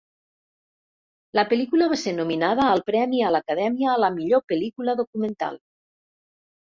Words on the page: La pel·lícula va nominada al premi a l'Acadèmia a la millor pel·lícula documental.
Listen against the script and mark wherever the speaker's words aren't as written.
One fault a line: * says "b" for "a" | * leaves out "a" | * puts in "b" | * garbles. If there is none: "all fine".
* puts in "ser"